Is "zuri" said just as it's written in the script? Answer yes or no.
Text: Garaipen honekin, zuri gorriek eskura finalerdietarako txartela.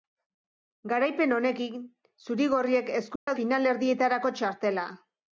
yes